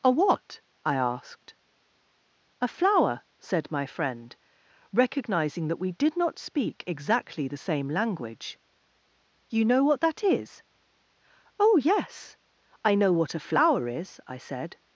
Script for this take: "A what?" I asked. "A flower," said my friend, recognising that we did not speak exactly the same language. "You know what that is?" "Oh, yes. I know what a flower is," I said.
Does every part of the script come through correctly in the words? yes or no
yes